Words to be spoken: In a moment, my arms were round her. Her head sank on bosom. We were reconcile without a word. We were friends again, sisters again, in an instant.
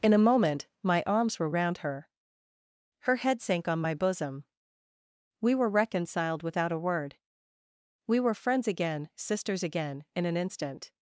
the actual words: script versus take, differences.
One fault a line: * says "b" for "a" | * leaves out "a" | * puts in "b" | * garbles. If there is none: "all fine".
* puts in "my"
* says "reconciled" for "reconcile"